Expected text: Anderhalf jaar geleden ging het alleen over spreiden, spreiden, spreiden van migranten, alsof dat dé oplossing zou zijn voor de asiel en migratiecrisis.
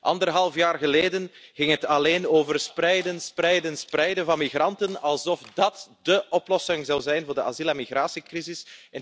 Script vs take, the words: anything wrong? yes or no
no